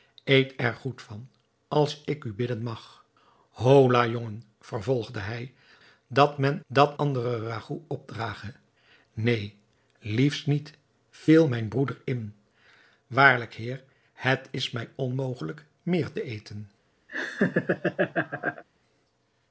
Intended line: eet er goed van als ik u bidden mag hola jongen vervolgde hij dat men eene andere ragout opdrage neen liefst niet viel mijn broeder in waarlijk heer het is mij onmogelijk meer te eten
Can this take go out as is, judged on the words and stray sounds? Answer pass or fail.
fail